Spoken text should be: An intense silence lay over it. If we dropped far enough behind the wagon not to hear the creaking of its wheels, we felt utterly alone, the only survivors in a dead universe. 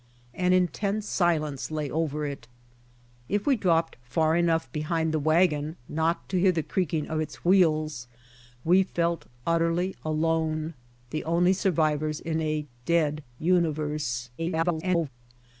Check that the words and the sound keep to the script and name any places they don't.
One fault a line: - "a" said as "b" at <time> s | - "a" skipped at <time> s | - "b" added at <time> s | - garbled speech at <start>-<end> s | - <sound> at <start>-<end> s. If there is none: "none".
- garbled speech at 14.4-15.1 s